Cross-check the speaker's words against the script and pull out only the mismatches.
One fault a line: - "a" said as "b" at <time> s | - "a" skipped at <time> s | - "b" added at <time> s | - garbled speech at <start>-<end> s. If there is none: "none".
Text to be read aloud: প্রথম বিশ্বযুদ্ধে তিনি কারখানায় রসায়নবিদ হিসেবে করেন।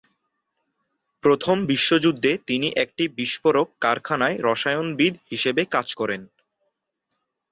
- "একটি বিস্ফোরক" added at 2.8 s
- "কাজ" added at 5.7 s